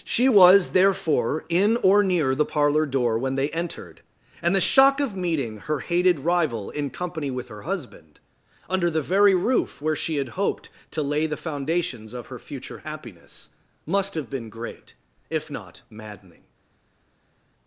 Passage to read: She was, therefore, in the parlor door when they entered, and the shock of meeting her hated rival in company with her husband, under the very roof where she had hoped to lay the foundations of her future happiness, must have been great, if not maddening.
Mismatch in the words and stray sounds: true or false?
true